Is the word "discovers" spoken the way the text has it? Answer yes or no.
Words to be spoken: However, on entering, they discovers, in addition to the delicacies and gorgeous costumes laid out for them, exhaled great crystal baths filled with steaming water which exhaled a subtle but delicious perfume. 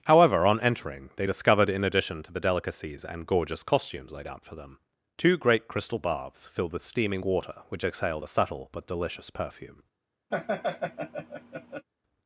no